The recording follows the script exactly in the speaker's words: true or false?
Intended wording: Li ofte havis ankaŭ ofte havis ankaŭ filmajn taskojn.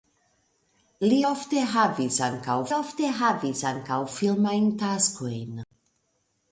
true